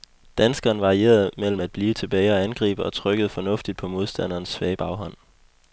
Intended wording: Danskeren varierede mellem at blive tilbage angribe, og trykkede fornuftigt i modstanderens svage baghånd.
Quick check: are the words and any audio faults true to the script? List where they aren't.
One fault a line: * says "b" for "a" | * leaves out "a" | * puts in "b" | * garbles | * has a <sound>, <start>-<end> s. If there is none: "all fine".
* puts in "og"
* says "på" for "i"